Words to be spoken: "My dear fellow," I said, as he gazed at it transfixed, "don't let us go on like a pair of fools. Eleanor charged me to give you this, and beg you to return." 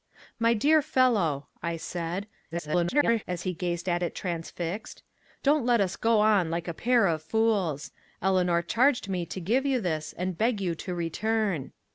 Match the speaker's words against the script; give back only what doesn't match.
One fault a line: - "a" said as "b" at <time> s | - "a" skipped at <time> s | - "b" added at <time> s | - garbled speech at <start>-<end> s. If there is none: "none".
- garbled speech at 2.5-3.2 s